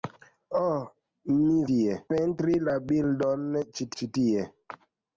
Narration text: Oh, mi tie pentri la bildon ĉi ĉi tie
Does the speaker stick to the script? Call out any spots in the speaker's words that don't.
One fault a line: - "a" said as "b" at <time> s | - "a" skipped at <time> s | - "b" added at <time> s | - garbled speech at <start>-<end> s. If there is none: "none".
none